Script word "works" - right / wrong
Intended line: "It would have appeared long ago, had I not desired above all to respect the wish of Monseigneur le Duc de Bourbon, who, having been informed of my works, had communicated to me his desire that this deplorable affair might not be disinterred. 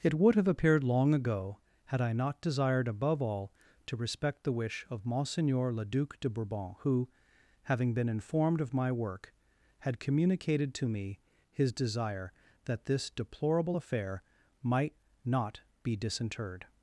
wrong